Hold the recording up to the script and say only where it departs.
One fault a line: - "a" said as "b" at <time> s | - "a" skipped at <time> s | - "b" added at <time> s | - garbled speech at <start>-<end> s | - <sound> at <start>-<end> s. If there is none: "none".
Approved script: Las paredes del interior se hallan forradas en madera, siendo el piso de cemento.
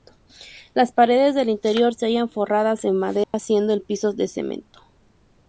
- dropout at 3.2-3.3 s